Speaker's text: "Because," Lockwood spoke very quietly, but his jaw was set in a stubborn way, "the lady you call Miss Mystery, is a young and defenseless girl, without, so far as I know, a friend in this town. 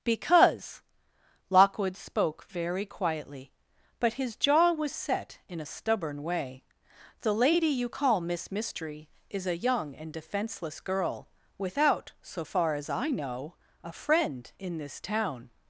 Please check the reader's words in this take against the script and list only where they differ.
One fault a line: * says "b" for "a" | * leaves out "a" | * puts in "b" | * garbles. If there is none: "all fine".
all fine